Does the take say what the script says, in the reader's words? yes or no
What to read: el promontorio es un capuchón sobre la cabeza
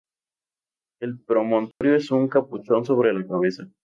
yes